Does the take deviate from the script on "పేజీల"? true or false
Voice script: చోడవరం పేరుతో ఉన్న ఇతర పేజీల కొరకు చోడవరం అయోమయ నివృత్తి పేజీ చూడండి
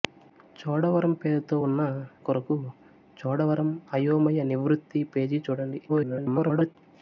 true